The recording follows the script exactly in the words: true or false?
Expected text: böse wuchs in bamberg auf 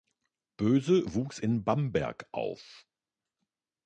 true